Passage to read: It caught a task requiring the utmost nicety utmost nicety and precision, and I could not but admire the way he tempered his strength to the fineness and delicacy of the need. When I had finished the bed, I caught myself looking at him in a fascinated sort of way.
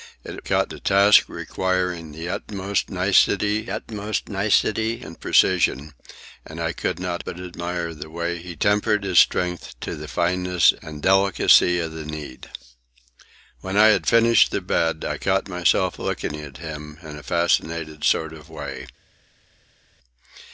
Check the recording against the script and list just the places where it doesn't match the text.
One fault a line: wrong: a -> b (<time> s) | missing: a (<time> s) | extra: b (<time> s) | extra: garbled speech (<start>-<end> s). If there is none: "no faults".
no faults